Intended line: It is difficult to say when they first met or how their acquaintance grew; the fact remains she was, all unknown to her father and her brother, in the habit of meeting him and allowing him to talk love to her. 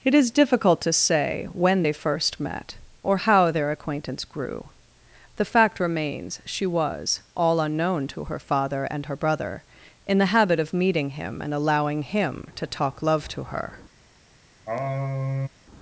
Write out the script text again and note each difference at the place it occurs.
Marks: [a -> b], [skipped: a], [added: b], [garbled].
It is difficult to say when they first met or how their acquaintance grew; the fact remains she was, all unknown to her father and her brother, in the habit of meeting him and allowing him to talk love to her.